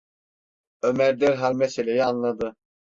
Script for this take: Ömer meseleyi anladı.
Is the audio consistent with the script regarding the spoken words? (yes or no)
no